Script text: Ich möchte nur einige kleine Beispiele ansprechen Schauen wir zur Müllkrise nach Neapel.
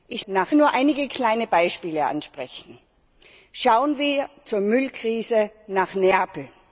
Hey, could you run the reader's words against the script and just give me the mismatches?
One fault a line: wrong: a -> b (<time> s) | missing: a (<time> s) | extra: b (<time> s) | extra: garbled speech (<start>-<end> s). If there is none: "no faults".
wrong: möchte -> nach (0.3 s)